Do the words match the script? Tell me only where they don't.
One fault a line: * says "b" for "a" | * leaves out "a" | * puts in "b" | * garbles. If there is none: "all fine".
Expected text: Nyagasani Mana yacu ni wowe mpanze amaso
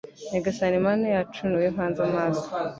all fine